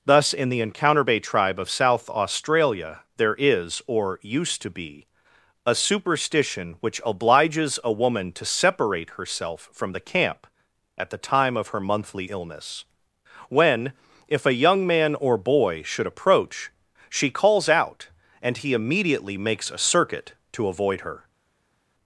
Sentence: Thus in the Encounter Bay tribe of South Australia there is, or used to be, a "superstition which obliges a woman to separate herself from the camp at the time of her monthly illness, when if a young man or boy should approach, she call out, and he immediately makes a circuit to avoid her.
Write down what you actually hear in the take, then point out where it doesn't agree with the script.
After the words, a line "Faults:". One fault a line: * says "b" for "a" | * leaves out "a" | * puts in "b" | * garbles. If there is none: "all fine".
Thus in the Encounter Bay tribe of South Australia there is, or used to be, a "superstition which obliges a woman to separate herself from the camp at the time of her monthly illness, when if a young man or boy should approach, she calls out, and he immediately makes a circuit to avoid her.
Faults:
* says "calls" for "call"